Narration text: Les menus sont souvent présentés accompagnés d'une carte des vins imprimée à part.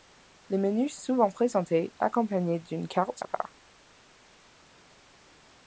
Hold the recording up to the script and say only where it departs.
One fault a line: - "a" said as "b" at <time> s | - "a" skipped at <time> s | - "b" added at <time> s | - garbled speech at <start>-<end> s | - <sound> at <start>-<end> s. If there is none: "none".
- "sont" skipped at 0.9 s
- "des vins imprimée" skipped at 3.2 s